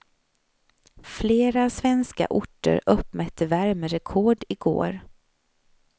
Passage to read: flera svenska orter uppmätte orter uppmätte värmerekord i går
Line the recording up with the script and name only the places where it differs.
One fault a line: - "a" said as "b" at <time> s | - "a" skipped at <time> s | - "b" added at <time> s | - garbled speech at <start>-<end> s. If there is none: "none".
- "orter uppmätte" skipped at 3.5 s